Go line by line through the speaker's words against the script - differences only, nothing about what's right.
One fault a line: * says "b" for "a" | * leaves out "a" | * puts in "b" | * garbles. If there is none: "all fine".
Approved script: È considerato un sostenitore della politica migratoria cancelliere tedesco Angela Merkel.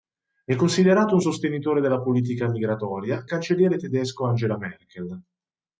all fine